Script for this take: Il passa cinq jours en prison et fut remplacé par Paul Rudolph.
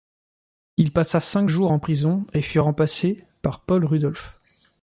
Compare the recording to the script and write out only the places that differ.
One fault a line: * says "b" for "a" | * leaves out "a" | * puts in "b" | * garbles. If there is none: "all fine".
all fine